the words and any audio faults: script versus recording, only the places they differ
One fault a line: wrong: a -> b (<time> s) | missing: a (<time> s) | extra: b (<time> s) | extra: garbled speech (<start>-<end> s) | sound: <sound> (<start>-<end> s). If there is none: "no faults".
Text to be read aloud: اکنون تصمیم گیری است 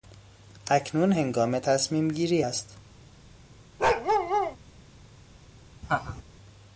extra: هنگام (1.1 s)
sound: bark (3.8-4.6 s)
sound: laugh (5.8-6.2 s)